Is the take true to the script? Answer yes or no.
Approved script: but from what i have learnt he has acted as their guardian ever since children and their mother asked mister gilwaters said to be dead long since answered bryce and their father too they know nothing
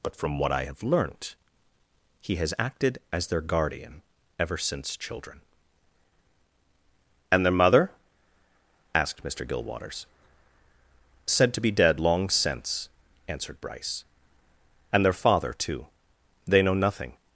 yes